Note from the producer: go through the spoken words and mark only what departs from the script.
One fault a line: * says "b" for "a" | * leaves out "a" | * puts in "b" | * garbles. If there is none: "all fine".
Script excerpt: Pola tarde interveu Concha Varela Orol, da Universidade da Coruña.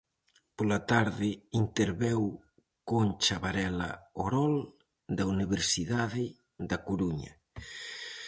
all fine